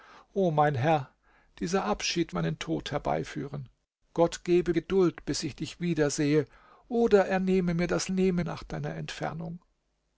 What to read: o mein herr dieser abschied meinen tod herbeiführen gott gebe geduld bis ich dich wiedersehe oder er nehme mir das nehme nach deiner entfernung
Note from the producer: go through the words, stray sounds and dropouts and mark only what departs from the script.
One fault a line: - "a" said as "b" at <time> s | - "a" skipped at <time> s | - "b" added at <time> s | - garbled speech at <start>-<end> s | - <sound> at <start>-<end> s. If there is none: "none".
none